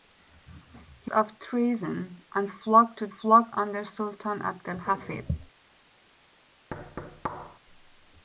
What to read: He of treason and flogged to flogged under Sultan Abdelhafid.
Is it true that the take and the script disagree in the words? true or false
false